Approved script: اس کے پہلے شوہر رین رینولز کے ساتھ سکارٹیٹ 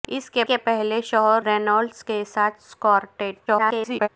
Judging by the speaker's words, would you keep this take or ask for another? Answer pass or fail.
fail